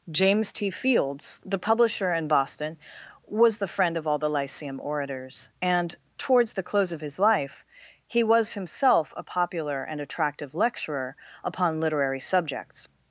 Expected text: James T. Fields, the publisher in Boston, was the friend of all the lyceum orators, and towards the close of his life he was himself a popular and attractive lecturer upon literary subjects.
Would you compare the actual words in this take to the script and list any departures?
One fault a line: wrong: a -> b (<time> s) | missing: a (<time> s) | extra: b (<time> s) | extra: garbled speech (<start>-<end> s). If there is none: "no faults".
no faults